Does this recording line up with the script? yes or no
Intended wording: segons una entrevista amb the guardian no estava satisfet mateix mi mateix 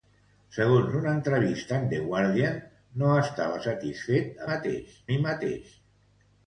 yes